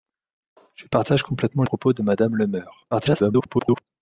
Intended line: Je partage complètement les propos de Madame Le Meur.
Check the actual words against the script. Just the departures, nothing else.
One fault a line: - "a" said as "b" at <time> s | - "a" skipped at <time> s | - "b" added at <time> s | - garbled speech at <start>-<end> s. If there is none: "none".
- "les" skipped at 1.6 s
- garbled speech at 2.9-3.8 s